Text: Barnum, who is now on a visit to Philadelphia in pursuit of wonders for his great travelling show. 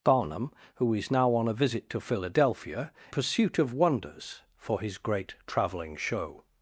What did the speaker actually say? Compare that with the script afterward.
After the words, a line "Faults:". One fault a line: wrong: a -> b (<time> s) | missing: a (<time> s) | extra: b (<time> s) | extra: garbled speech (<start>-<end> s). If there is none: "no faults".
Barnum, who is now on a visit to Philadelphia pursuit of wonders for his great travelling show.
Faults:
missing: in (2.9 s)